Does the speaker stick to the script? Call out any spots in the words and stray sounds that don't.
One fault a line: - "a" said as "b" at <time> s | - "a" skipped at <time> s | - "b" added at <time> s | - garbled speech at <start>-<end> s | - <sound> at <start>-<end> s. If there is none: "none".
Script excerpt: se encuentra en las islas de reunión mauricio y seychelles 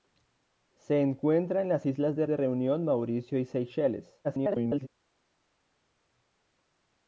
- "de" added at 2.3 s
- garbled speech at 4.2-4.9 s